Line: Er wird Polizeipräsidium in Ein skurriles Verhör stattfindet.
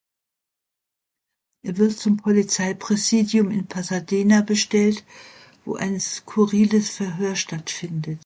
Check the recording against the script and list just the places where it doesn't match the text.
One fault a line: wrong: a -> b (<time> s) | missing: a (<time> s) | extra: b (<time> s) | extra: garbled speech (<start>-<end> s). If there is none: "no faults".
extra: zum (2.0 s)
extra: Pasadena bestellt wo (3.7 s)